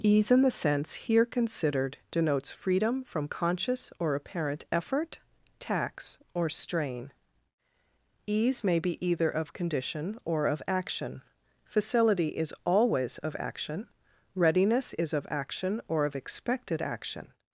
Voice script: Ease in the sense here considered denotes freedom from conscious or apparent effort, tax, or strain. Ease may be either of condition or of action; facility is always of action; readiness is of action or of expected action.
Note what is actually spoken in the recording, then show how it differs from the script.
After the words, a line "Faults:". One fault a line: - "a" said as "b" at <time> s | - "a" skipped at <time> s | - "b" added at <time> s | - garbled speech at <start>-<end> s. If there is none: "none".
Ease in the sense here considered denotes freedom from conscious or apparent effort, tax, or strain. Ease may be either of condition or of action; facility is always of action; readiness is of action or of expected action.
Faults:
none